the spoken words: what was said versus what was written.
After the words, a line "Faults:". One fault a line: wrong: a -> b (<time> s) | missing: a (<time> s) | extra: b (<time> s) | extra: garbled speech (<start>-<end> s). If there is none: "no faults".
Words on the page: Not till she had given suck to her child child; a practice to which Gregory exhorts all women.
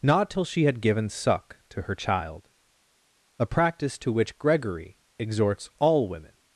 Not till she had given suck to her child; a practice to which Gregory exhorts all women.
Faults:
missing: child (2.5 s)